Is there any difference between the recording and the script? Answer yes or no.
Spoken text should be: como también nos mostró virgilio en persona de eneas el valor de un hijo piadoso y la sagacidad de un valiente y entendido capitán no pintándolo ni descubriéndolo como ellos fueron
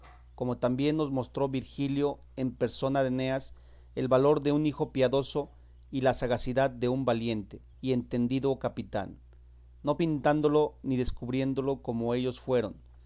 no